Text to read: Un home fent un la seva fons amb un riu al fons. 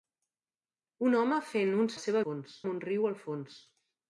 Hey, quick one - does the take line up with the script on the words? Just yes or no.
yes